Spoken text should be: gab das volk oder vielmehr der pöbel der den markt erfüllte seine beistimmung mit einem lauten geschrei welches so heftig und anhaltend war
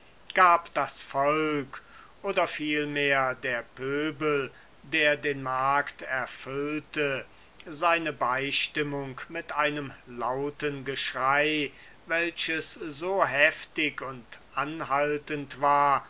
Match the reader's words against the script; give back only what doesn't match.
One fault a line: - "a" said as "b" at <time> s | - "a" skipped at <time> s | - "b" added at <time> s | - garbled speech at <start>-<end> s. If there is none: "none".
none